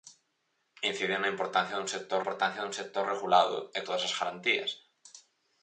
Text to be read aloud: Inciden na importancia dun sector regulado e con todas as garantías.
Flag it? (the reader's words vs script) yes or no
yes